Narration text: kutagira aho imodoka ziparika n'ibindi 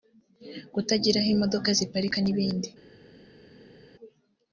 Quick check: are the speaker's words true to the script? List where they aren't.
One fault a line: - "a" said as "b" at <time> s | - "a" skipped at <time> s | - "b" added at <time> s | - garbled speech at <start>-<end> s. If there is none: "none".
none